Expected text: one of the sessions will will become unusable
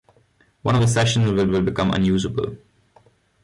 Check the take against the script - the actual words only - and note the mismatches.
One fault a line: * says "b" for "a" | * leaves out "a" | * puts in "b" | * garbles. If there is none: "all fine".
all fine